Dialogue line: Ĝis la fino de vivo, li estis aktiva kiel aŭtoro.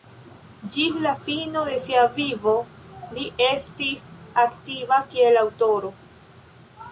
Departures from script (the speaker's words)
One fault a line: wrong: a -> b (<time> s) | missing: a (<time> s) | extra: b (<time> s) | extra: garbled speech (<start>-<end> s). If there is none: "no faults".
extra: sia (1.8 s)